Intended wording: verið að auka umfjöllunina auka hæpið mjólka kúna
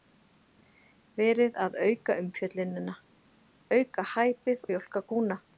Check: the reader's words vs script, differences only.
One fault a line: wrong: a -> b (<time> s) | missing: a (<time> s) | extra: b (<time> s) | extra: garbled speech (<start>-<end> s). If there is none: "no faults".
no faults